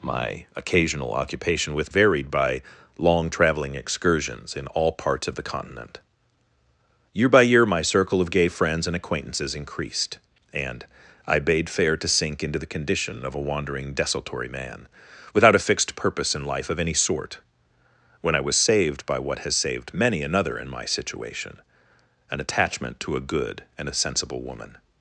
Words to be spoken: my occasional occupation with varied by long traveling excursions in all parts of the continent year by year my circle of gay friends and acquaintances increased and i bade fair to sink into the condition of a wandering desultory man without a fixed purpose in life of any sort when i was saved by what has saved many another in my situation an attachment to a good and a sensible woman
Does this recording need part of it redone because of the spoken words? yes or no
no